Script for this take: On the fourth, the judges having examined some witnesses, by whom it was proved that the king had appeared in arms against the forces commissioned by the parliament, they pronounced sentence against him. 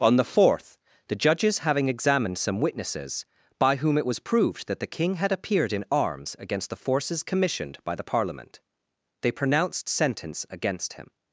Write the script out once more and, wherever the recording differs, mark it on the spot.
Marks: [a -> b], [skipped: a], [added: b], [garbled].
On the fourth, the judges having examined some witnesses, by whom it was proved that the king had appeared in arms against the forces commissioned by the parliament, they pronounced sentence against him.